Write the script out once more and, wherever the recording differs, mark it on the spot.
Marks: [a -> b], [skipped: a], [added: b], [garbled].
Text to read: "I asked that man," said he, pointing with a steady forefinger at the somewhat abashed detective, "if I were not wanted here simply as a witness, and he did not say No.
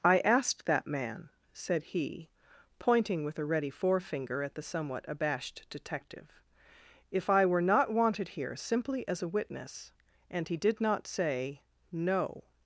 "I asked that man," said he, pointing with a [steady -> ready] forefinger at the somewhat abashed detective, "if I were not wanted here simply as a witness, and he did not say No.